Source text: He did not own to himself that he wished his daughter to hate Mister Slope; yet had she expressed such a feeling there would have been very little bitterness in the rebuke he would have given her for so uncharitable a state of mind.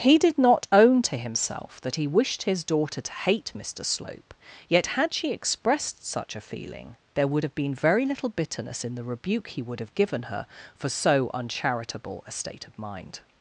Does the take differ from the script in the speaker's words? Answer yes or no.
no